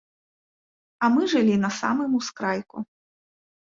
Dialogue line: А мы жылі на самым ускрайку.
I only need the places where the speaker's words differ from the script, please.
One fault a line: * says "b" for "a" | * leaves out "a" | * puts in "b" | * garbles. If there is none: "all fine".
all fine